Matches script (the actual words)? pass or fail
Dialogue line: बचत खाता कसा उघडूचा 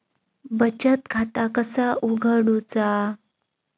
pass